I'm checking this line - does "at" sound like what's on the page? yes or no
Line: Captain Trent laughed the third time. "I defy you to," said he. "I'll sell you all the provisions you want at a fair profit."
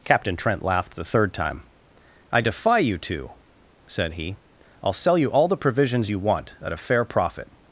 yes